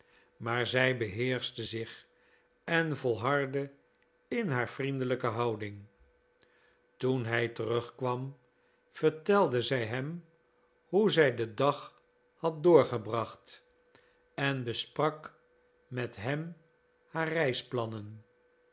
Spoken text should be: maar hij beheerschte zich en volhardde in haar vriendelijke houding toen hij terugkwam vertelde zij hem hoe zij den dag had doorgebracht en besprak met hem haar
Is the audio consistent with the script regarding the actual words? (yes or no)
no